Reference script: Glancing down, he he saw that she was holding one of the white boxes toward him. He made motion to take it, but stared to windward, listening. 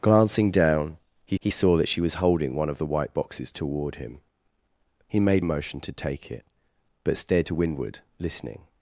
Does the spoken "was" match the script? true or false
true